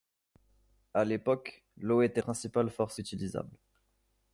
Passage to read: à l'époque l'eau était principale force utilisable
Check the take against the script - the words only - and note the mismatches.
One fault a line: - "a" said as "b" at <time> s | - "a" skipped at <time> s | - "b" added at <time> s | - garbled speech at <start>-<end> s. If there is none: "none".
none